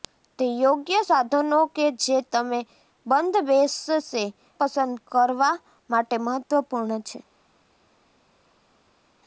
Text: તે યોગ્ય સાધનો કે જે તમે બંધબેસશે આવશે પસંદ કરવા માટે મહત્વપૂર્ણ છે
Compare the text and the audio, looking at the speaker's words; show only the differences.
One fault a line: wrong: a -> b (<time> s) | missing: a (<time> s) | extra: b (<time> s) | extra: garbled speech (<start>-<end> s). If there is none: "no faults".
missing: આવશે (4.2 s)